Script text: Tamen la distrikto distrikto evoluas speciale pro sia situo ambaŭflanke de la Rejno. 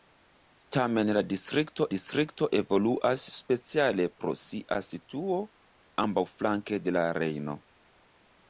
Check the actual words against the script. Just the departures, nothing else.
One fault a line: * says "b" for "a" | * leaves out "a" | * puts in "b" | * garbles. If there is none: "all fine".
all fine